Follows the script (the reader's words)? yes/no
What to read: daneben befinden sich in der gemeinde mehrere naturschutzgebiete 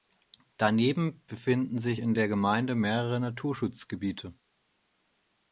yes